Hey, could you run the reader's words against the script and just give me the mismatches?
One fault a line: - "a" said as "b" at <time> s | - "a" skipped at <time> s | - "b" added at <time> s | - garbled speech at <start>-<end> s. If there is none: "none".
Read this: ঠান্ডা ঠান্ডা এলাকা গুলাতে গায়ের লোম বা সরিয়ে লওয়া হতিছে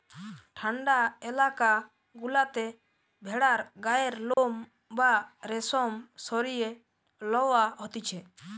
- "ঠান্ডা" skipped at 1.0 s
- "ভেড়ার" added at 3.2 s
- "রেশম" added at 5.5 s